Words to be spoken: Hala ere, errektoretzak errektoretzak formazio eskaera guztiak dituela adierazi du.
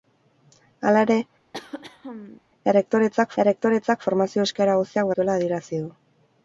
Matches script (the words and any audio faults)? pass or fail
fail